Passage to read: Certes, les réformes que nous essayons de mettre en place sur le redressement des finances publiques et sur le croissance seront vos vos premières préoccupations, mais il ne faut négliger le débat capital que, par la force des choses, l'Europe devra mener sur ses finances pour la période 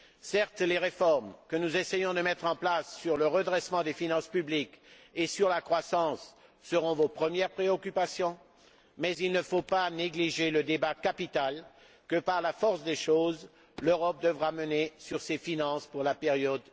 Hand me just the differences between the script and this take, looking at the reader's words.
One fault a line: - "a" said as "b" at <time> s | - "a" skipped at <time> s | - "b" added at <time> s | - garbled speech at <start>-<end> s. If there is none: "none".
- "le" said as "la" at 5.5 s
- "vos" skipped at 7.1 s
- "pas" added at 9.6 s